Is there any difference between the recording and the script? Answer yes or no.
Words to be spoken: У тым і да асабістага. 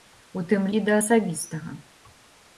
no